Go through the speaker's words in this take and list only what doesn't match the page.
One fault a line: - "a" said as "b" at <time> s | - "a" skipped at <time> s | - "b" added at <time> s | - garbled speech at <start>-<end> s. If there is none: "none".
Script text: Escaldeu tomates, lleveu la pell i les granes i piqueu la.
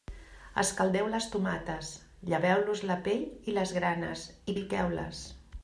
- "les" added at 1.1 s
- "los" added at 2.7 s
- "la" said as "les" at 5.0 s